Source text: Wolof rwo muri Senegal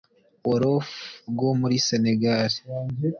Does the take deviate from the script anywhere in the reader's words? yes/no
no